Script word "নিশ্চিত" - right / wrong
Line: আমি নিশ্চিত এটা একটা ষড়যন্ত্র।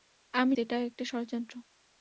wrong